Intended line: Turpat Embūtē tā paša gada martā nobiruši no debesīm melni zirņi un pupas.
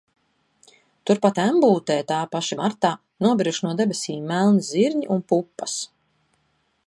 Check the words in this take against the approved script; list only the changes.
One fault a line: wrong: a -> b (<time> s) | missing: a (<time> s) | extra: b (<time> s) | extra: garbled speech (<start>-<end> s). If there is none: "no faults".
missing: gada (2.6 s)